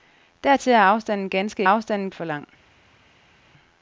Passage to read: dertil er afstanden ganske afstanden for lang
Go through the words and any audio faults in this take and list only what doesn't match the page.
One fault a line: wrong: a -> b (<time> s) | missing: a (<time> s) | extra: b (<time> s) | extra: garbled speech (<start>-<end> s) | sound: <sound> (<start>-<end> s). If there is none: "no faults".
no faults